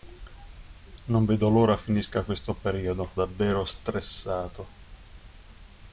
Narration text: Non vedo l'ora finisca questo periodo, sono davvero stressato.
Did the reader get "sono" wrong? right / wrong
wrong